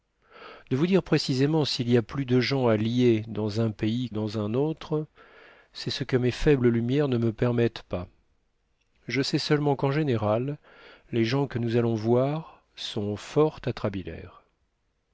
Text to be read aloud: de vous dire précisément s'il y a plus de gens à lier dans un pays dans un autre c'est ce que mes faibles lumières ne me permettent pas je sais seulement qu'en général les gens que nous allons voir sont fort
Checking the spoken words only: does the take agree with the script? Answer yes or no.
yes